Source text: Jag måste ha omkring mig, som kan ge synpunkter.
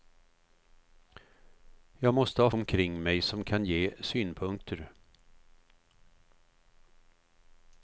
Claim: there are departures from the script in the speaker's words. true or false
false